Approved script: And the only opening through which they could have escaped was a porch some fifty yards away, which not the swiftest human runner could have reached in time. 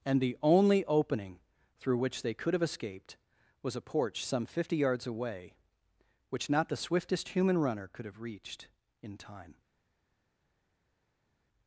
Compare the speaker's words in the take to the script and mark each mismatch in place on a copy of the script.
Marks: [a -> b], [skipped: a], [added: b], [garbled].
And the only opening through which they could have escaped was a porch some fifty yards away, which not the swiftest human runner could have reached in time.